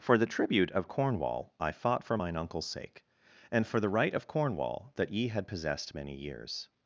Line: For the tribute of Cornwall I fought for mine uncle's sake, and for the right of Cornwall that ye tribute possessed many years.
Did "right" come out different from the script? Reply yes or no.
no